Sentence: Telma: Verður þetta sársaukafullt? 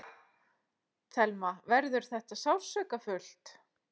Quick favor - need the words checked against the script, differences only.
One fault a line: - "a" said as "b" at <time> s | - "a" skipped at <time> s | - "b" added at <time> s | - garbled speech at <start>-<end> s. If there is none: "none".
none